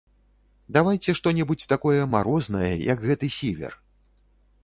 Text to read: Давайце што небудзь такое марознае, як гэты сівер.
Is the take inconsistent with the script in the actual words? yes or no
no